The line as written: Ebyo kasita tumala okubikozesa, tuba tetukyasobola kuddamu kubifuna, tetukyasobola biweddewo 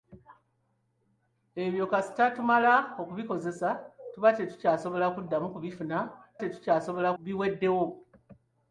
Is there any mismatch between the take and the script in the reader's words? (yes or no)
no